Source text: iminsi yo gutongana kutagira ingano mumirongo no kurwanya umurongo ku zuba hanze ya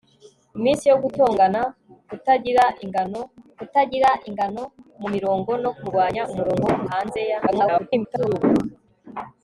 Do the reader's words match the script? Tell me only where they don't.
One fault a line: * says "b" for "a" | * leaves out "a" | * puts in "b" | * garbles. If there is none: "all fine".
* puts in "kutagira ingano"
* leaves out "zuba"
* garbles